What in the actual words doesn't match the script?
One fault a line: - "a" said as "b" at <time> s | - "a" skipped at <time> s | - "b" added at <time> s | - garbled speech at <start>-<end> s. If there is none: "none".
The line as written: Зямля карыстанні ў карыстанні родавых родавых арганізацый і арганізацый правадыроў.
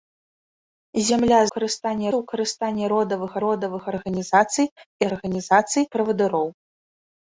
none